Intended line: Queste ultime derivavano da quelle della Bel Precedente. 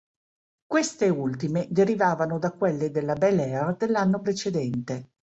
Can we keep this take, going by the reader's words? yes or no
no